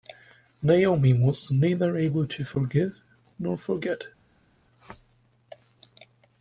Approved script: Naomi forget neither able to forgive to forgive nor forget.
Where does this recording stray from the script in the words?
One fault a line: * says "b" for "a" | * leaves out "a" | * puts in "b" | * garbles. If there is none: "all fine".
* says "was" for "forget"
* leaves out "to forgive"